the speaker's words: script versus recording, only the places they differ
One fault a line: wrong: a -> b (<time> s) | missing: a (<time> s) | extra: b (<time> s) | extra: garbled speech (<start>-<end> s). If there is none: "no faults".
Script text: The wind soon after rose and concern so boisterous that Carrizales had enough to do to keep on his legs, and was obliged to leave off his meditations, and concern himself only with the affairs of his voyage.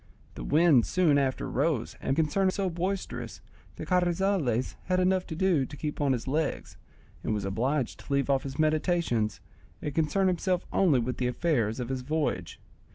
no faults